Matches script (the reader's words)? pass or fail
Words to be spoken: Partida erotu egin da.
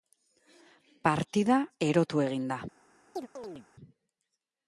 pass